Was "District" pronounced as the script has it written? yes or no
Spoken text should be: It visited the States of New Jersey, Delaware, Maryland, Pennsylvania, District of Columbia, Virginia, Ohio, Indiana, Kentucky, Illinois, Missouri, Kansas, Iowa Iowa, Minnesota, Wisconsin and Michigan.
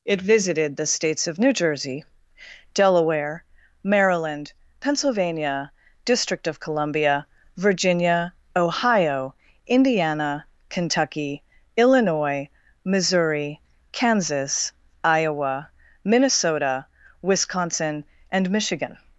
yes